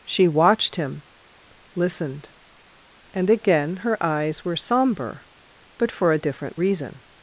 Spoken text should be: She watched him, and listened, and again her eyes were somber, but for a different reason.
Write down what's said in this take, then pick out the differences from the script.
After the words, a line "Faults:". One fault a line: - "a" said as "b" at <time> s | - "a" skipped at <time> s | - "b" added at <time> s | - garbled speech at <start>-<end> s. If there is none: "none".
She watched him, listened, and again her eyes were somber, but for a different reason.
Faults:
- "and" skipped at 1.0 s